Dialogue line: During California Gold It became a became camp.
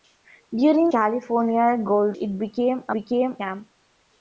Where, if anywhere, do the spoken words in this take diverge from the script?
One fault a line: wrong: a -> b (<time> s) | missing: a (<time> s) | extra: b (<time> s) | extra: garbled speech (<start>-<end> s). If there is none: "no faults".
no faults